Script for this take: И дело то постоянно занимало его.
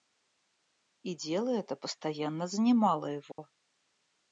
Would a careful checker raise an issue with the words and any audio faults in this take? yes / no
yes